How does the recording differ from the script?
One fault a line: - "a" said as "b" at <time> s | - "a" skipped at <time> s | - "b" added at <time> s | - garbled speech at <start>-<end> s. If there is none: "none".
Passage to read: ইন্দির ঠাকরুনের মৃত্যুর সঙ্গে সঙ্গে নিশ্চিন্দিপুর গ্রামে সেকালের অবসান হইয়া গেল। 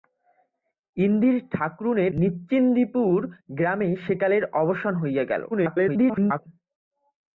- "মৃত্যুর সঙ্গে সঙ্গে" skipped at 2.1 s
- garbled speech at 5.5-6.4 s